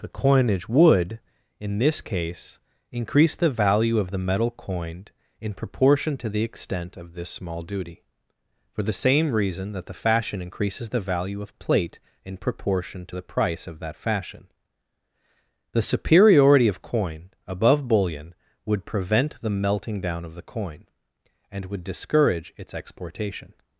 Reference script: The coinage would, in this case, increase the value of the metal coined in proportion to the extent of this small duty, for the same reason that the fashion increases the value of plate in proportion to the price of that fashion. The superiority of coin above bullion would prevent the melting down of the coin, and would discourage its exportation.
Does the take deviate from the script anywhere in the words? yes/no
no